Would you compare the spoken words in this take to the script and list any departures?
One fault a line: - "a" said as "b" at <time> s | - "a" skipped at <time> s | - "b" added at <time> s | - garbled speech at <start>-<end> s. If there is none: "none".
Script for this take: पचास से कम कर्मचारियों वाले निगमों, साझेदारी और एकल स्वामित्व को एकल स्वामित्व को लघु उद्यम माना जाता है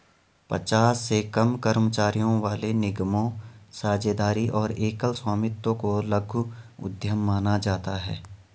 - "एकल स्वामित्व को" skipped at 6.0 s